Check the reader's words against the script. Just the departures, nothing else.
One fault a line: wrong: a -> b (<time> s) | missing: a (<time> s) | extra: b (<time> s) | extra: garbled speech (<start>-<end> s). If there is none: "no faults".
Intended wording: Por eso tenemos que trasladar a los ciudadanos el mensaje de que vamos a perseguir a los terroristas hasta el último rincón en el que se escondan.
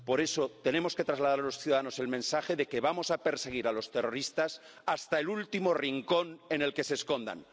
no faults